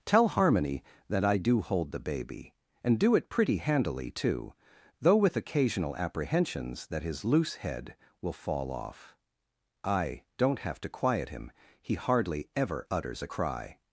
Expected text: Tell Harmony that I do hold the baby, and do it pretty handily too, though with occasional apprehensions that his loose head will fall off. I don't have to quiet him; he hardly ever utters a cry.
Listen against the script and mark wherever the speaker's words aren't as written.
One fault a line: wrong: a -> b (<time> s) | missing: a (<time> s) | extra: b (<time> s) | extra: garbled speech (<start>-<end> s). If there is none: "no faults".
no faults